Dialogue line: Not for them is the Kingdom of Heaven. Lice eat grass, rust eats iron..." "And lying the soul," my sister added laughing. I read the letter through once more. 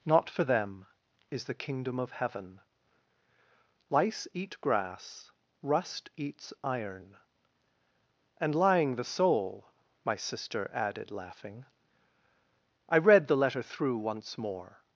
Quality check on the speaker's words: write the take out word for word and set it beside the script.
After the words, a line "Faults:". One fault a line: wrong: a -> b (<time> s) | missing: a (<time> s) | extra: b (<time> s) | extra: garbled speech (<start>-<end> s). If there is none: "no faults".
Not for them is the Kingdom of Heaven. Lice eat grass, rust eats iron..." "And lying the soul," my sister added laughing. I read the letter through once more.
Faults:
no faults